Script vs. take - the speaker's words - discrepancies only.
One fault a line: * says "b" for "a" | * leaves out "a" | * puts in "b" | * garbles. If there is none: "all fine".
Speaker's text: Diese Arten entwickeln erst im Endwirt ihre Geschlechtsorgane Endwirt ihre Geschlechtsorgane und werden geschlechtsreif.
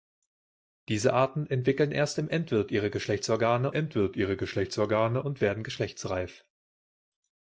all fine